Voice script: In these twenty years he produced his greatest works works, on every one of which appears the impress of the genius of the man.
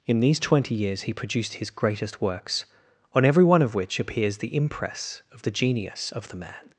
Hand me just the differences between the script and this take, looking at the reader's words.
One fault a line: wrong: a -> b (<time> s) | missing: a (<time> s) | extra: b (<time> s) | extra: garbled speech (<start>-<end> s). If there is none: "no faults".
missing: works (2.6 s)